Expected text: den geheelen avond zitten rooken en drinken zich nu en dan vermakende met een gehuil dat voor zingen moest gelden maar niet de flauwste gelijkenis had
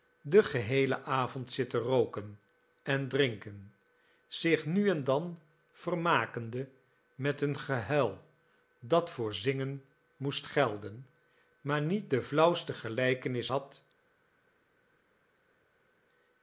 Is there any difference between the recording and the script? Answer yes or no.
no